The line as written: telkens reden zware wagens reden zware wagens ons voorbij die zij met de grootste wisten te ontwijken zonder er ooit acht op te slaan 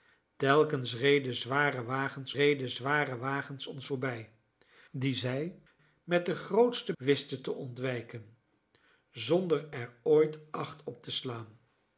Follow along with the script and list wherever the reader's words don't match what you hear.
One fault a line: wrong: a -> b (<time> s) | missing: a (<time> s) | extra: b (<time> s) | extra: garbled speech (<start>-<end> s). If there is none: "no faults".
no faults